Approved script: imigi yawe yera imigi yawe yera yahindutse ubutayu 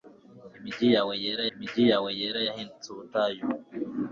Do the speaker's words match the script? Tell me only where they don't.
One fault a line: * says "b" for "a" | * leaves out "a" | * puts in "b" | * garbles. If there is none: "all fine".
all fine